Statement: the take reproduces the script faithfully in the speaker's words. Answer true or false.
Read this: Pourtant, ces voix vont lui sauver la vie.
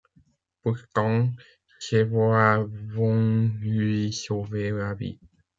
true